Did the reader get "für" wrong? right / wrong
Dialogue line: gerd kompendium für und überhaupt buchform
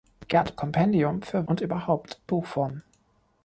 right